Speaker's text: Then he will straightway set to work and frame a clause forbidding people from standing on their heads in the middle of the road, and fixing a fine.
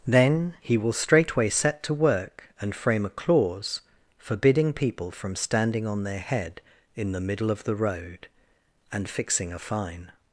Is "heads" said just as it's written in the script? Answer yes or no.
no